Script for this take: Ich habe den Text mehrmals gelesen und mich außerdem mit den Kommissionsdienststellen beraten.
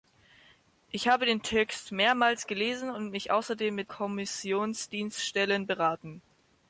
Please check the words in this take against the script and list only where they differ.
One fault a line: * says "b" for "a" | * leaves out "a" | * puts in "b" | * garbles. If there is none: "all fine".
* leaves out "den"